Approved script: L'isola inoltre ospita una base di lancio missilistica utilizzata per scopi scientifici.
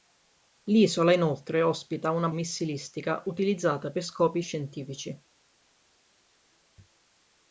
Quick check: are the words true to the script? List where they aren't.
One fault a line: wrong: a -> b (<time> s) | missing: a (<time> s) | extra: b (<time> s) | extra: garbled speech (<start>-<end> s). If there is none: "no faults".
missing: base di lancio (2.3 s)